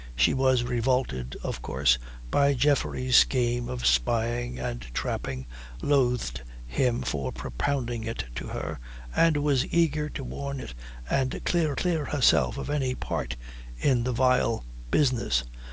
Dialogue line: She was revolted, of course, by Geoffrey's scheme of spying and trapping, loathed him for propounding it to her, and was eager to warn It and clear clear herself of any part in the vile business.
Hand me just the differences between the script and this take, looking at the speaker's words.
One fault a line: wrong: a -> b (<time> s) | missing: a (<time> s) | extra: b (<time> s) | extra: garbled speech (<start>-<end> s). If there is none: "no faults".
no faults